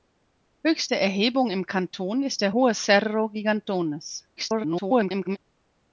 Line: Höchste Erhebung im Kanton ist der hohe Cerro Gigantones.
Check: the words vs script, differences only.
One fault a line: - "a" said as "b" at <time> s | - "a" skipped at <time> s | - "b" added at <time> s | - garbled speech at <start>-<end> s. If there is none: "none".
- garbled speech at 4.4-5.4 s